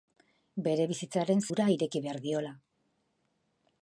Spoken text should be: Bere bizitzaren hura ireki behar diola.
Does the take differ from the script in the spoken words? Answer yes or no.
no